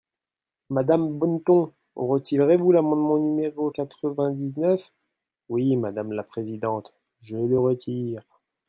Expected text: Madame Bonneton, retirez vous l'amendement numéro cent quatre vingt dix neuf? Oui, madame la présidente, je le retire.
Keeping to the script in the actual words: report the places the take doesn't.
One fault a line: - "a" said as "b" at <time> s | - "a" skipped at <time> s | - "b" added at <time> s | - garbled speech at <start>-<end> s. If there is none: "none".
- "cent" skipped at 3.7 s